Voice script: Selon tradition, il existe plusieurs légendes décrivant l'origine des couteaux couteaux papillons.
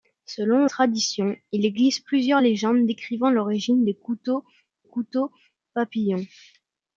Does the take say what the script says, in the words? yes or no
yes